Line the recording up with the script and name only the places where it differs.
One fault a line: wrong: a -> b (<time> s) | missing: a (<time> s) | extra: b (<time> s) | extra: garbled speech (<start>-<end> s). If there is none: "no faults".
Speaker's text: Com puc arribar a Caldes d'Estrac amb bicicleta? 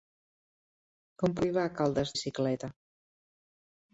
missing: puc (1.4 s)
missing: d'Estrac amb (2.1 s)